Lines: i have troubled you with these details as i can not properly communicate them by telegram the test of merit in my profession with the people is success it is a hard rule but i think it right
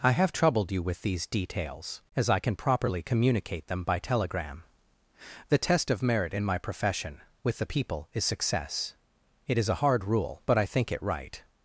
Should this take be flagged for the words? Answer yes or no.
yes